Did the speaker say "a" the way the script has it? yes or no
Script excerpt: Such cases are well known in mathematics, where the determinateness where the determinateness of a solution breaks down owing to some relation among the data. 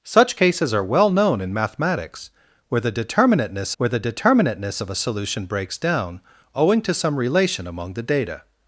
yes